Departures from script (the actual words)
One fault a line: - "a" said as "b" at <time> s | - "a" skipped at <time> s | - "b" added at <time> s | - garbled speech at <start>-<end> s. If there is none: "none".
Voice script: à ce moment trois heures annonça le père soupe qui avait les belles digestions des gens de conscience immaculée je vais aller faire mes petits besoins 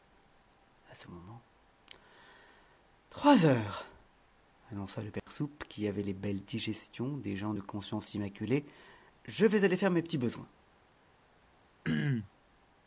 none